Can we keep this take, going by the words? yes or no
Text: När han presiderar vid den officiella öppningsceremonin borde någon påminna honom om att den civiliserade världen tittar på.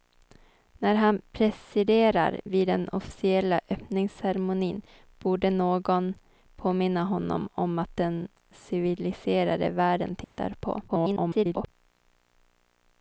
no